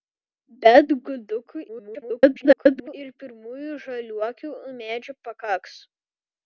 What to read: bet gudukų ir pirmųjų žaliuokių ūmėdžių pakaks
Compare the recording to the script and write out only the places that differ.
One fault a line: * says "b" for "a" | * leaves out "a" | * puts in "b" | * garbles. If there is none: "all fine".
* garbles